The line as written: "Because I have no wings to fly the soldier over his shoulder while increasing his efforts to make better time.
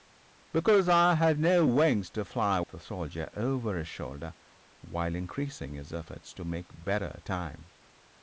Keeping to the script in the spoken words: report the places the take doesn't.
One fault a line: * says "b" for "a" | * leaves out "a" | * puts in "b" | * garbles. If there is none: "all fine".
all fine